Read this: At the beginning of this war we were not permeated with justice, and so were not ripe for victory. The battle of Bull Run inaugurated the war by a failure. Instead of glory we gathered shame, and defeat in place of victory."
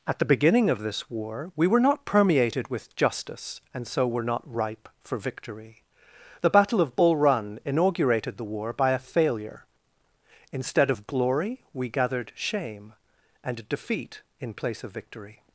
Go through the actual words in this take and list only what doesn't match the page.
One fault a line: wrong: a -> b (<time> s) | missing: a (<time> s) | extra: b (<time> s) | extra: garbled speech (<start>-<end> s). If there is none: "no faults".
no faults